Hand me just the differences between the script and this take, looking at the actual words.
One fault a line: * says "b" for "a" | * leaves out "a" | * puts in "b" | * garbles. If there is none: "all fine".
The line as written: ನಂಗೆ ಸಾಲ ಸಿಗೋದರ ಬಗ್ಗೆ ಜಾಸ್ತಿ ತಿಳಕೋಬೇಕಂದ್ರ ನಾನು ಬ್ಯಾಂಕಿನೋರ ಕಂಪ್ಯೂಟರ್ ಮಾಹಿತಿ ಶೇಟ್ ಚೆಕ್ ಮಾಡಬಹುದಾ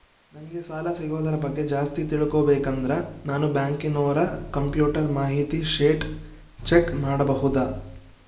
all fine